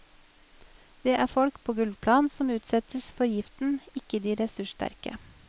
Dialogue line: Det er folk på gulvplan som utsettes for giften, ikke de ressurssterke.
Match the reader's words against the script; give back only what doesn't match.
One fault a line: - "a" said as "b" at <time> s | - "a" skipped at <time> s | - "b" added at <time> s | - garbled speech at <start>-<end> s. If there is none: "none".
none